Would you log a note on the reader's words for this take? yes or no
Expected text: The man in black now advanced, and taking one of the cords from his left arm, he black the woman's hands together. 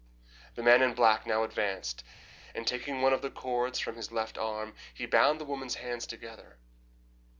yes